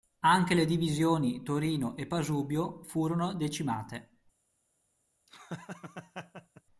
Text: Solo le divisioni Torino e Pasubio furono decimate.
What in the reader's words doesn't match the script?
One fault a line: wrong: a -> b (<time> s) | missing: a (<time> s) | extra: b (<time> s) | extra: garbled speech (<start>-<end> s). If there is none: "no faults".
wrong: Solo -> Anche (0.2 s)